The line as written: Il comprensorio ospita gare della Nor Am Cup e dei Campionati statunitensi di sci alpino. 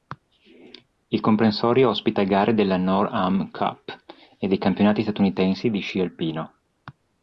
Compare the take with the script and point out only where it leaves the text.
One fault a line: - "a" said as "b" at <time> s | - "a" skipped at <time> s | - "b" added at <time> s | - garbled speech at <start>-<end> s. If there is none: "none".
none